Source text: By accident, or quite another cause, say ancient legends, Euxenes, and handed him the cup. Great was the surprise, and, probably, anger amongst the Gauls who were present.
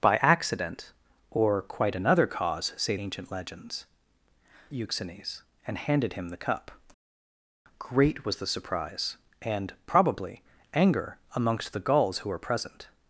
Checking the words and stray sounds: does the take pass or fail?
pass